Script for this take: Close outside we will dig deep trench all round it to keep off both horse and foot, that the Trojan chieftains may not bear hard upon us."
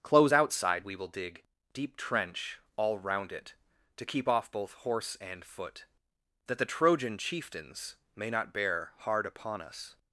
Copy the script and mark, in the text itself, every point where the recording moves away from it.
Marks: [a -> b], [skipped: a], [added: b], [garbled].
Close outside we will dig deep trench all round it to keep off both horse and foot, that the Trojan chieftains may not bear hard upon us."